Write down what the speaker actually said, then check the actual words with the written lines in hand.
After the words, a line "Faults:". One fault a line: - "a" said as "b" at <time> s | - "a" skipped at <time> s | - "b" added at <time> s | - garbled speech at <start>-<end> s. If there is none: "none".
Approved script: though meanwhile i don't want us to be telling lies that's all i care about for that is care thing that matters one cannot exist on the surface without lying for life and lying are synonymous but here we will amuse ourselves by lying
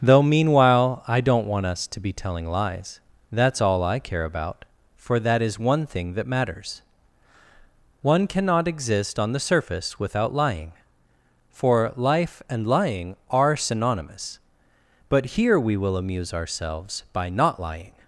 though meanwhile i don't want us to be telling lies that's all i care about for that is one thing that matters one cannot exist on the surface without lying for life and lying are synonymous but here we will amuse ourselves by not lying
Faults:
- "care" said as "one" at 5.6 s
- "not" added at 17.3 s